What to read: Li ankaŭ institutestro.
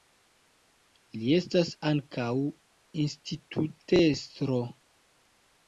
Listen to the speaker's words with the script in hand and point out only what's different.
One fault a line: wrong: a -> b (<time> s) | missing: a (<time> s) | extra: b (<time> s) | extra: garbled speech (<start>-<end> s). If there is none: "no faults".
extra: estas (1.4 s)